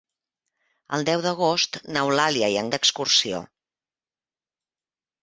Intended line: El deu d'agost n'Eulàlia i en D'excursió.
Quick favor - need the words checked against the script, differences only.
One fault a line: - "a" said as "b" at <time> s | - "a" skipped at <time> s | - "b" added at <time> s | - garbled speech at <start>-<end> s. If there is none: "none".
none